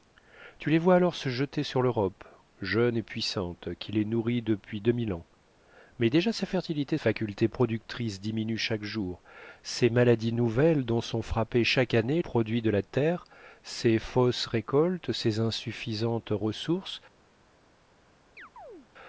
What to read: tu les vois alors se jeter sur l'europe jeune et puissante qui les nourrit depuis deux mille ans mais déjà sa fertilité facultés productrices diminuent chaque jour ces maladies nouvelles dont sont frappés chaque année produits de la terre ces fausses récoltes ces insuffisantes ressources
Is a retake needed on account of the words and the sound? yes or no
yes